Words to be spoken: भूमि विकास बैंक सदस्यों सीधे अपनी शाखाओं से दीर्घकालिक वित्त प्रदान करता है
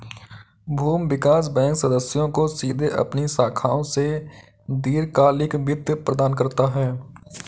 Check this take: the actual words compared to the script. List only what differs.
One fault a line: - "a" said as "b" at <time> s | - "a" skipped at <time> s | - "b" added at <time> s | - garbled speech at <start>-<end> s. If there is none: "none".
- "को" added at 2.3 s